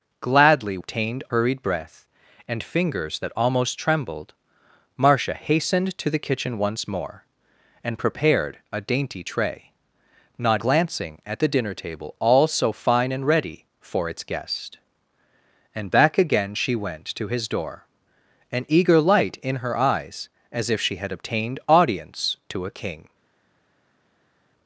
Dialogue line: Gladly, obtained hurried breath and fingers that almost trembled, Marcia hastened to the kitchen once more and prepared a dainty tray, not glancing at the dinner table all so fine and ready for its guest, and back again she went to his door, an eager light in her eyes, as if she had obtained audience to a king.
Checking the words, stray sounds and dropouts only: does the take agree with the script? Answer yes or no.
yes